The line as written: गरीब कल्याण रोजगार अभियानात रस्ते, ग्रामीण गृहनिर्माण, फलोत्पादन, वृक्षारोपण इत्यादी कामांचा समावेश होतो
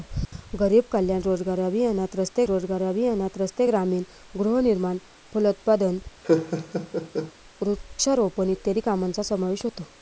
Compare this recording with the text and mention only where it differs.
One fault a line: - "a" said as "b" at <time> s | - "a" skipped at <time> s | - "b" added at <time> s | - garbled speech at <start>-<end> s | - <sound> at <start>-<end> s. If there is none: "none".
- "रोजगार अभियानात रस्ते" added at 2.4 s
- laugh at 6.2-7.3 s